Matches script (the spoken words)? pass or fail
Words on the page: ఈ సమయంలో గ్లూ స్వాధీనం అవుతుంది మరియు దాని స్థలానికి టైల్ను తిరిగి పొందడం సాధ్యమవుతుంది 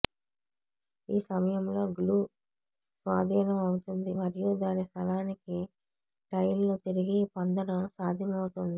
pass